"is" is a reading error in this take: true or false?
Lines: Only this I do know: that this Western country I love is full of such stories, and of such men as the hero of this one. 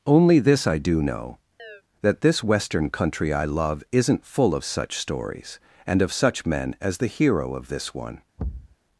true